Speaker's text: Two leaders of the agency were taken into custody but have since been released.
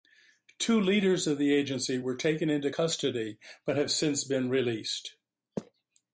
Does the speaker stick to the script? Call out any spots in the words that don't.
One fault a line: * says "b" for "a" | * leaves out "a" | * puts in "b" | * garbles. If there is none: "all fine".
all fine